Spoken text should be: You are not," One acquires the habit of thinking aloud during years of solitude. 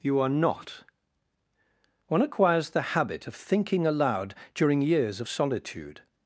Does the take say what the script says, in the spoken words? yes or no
yes